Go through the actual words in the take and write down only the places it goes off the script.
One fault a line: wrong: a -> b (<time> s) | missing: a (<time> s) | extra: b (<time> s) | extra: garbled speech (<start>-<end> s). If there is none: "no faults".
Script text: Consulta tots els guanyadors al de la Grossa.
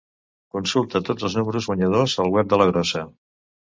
extra: números (1.4 s)
extra: web (2.4 s)